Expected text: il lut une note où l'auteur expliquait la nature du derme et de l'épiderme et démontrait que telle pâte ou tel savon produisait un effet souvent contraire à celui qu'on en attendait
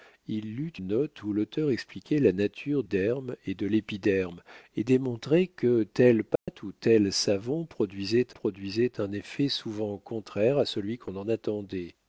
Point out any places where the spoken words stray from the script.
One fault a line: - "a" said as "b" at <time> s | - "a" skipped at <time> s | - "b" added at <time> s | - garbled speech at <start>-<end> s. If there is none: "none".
- "une" skipped at 0.8 s
- "du" skipped at 2.8 s
- "produisait" added at 8.3 s